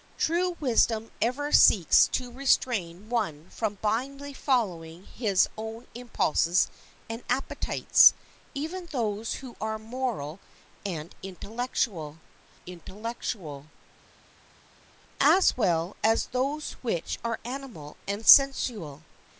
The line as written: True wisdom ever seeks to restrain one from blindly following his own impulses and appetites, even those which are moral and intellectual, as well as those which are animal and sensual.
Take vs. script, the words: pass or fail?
fail